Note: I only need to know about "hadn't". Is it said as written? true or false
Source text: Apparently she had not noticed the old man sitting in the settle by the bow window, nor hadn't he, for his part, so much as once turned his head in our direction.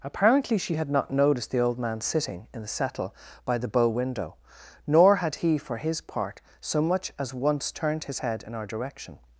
false